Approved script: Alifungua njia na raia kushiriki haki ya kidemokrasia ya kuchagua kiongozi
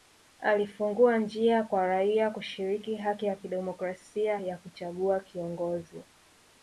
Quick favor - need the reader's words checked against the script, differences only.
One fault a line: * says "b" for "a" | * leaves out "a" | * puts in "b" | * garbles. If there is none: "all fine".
* says "kwa" for "na"